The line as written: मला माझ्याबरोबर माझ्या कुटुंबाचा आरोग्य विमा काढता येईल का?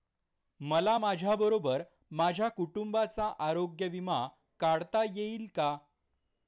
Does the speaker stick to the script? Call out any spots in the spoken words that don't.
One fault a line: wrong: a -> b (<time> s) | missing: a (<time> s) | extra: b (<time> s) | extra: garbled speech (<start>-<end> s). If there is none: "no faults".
no faults